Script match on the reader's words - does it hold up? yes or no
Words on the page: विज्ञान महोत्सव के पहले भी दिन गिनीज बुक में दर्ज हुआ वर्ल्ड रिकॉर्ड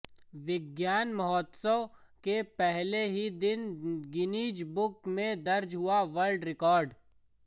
no